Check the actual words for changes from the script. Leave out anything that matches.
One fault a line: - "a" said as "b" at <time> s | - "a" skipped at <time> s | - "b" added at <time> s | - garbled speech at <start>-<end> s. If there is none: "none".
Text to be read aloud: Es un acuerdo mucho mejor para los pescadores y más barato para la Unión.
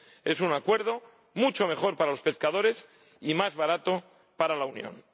none